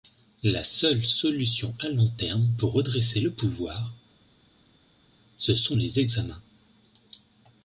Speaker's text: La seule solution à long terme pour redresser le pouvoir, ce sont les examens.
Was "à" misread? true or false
false